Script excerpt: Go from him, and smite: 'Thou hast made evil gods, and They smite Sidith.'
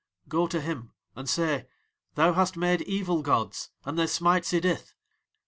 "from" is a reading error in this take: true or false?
true